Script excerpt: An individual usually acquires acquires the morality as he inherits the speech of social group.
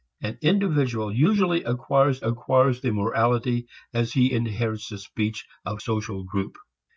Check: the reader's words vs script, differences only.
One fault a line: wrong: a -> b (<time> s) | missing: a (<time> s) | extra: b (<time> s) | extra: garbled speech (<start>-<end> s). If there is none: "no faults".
no faults